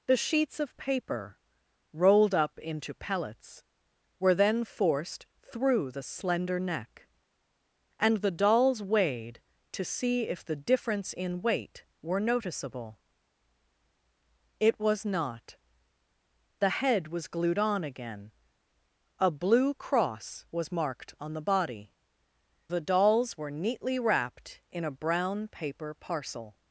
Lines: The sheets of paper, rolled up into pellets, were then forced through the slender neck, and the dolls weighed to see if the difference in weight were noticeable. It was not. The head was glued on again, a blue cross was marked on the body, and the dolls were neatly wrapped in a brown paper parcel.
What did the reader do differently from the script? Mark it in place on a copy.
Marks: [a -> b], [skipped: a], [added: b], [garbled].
The sheets of paper, rolled up into pellets, were then forced through the slender neck, and the dolls weighed to see if the difference in weight were noticeable. It was not. The head was glued on again, a blue cross was marked on the body, [skipped: and] the dolls were neatly wrapped in a brown paper parcel.